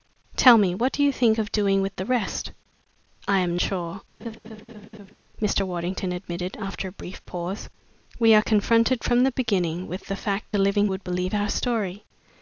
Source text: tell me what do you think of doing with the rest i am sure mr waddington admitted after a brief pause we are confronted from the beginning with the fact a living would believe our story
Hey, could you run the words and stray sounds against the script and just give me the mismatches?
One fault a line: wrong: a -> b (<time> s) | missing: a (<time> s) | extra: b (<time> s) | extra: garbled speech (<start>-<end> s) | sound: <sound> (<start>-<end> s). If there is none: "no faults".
sound: laugh (4.2-5.2 s)